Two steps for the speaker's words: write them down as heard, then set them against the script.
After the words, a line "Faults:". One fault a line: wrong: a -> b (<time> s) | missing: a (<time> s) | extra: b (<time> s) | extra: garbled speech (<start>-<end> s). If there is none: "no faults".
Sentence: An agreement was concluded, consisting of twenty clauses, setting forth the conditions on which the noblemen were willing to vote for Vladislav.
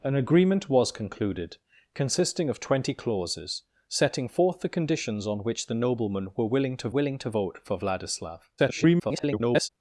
An agreement was concluded, consisting of twenty clauses, setting forth the conditions on which the noblemen were willing to willing to vote for Vladislav. [garbled]
Faults:
extra: willing to (6.9 s)
extra: garbled speech (8.6-9.7 s)